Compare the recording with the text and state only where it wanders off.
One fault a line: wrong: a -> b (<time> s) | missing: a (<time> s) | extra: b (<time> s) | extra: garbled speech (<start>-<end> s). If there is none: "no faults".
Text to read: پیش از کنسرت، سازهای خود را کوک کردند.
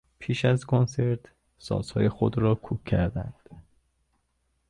no faults